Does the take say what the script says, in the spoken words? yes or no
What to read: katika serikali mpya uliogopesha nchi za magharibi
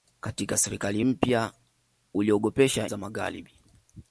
no